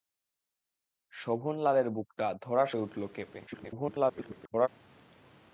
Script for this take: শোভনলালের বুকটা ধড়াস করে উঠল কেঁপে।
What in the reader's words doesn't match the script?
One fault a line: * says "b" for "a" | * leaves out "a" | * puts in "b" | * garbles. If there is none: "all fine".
* garbles